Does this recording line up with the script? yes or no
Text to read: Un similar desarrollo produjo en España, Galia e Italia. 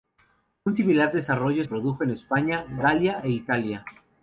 yes